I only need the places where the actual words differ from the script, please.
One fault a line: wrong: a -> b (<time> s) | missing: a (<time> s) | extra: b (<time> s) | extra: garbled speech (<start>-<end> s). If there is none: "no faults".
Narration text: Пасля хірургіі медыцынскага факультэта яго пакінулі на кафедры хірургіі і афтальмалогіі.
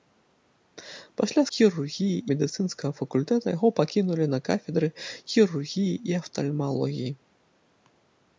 no faults